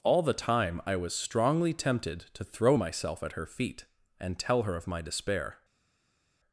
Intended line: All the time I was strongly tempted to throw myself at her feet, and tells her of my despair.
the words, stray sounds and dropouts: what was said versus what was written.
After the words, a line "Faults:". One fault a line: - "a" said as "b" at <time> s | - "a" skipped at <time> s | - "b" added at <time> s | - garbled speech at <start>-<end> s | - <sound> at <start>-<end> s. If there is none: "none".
All the time I was strongly tempted to throw myself at her feet, and tell her of my despair.
Faults:
- "tells" said as "tell" at 4.4 s